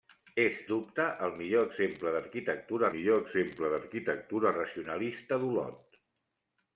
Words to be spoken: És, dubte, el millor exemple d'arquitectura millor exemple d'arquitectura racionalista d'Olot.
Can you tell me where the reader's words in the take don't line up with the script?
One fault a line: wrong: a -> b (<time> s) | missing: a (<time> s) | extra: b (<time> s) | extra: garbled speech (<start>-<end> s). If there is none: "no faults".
no faults